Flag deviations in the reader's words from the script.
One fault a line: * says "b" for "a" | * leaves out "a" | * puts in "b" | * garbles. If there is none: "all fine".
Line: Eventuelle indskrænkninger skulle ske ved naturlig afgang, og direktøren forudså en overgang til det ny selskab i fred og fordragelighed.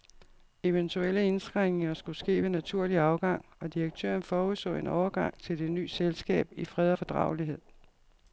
all fine